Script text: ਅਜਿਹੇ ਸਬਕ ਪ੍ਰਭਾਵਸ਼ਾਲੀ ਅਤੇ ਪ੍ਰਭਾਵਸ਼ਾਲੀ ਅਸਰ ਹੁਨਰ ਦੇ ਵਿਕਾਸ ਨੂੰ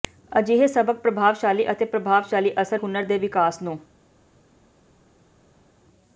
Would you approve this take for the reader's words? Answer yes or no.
yes